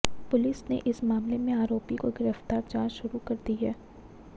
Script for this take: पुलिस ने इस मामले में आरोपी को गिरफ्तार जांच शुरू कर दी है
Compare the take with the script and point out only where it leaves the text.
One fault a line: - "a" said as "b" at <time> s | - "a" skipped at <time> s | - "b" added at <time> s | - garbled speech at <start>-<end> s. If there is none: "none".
none